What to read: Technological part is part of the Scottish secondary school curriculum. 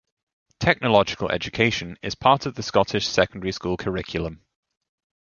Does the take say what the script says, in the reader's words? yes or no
no